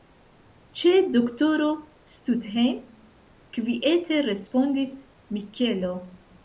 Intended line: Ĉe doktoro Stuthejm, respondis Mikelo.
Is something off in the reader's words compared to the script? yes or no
yes